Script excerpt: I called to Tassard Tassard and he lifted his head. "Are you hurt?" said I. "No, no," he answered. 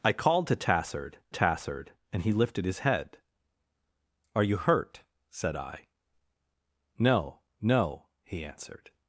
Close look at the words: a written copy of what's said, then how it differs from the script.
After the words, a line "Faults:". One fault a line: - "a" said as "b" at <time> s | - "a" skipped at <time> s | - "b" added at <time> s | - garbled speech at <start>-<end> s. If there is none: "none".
I called to Tassard Tassard and he lifted his head. "Are you hurt?" said I. "No, no," he answered.
Faults:
none